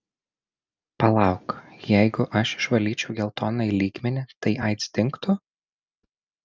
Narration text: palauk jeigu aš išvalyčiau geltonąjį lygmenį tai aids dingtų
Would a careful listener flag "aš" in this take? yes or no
no